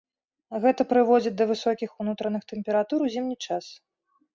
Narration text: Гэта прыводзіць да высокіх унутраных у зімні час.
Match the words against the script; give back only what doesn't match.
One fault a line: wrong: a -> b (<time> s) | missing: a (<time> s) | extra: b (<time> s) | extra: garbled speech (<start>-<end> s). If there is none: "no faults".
extra: тэмператур (2.5 s)